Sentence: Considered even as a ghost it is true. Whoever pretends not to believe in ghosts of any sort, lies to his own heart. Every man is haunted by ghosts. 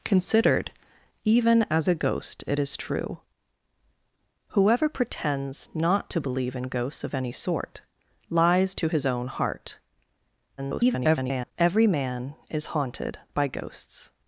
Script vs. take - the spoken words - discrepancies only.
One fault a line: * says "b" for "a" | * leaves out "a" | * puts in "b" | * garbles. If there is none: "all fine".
* garbles